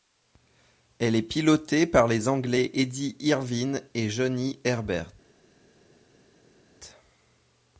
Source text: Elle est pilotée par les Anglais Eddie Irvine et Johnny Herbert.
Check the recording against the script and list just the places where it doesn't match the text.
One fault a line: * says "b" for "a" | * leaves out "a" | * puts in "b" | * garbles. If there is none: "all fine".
all fine